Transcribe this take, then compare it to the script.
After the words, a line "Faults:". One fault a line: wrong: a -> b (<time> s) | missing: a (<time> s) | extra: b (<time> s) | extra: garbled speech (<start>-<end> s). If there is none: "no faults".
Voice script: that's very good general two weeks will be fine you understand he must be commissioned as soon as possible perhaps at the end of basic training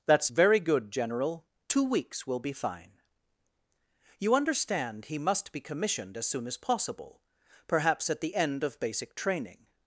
that's very good general two weeks will be fine you understand he must be commissioned as soon as possible perhaps at the end of basic training
Faults:
no faults